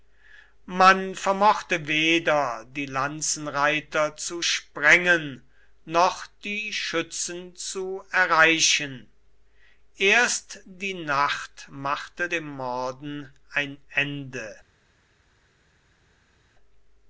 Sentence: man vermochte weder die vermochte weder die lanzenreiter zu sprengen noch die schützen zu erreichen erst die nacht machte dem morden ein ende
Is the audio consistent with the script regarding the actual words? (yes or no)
no